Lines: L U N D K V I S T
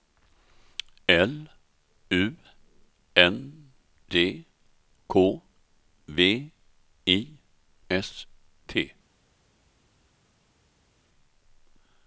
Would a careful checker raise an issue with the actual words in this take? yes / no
no